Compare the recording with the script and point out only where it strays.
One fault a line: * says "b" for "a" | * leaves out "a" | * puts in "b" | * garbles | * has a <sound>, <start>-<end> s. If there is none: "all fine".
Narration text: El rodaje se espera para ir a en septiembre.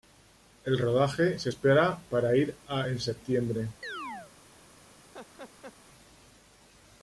* has a chirp, 3.8-4.3 s
* has a laugh, 5.1-5.7 s